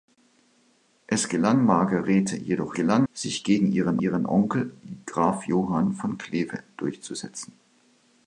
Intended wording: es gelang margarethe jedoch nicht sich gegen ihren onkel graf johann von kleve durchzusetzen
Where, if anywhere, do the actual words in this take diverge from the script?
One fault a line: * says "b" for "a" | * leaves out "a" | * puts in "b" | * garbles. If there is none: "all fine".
* says "gelang" for "nicht"
* puts in "ihren"